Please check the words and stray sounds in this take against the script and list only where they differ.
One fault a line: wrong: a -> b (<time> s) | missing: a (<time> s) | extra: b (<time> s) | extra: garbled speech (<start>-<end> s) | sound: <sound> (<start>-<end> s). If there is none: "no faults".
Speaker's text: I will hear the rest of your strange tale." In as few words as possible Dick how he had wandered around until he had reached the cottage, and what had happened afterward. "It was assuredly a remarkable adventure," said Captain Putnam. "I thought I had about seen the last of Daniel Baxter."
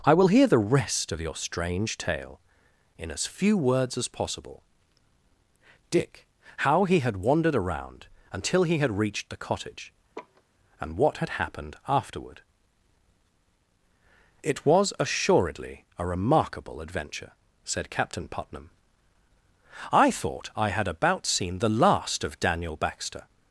sound: laugh (10.1-10.4 s)